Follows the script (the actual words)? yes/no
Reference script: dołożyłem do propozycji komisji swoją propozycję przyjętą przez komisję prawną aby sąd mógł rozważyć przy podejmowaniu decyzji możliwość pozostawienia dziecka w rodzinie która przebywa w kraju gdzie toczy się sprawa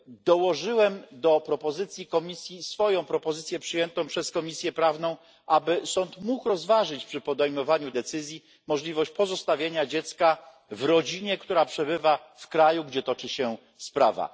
yes